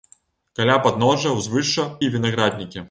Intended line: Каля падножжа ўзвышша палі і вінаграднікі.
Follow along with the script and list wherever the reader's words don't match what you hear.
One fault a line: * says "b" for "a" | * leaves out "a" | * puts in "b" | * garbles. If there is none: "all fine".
* leaves out "палі"